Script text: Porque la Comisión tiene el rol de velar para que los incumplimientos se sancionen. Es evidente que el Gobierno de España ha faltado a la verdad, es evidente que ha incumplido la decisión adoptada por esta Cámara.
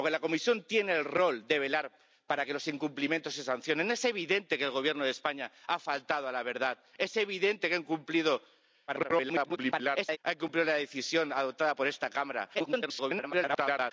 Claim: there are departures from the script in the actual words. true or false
true